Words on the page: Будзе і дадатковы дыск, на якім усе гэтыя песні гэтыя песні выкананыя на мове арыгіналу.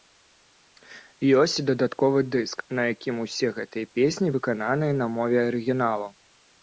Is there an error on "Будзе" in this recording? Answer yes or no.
yes